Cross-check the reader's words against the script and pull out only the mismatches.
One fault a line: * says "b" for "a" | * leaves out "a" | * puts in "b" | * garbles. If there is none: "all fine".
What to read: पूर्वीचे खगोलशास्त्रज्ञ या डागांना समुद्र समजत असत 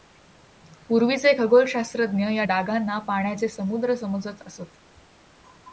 * puts in "पाण्याचे"